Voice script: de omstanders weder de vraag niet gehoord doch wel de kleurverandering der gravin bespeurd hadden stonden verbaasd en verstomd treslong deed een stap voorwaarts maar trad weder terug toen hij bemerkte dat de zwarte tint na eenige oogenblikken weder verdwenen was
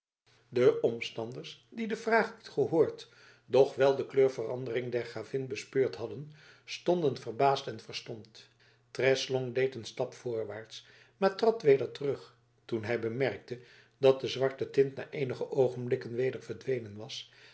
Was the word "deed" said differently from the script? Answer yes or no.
no